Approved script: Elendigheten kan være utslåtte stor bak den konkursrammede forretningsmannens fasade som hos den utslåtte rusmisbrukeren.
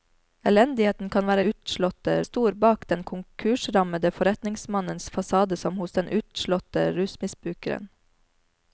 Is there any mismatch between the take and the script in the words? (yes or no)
no